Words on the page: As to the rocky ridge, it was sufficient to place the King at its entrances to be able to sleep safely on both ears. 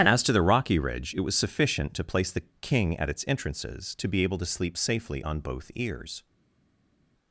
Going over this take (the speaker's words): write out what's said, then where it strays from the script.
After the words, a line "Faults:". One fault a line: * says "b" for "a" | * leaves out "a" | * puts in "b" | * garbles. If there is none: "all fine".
As to the rocky ridge, it was sufficient to place the King at its entrances to be able to sleep safely on both ears.
Faults:
all fine